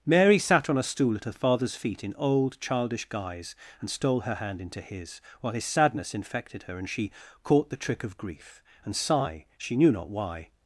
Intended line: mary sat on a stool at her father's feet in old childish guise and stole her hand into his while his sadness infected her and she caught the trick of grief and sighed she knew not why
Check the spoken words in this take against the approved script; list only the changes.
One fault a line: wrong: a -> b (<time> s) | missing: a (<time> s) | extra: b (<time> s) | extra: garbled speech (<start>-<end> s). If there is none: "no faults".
wrong: sighed -> sigh (8.9 s)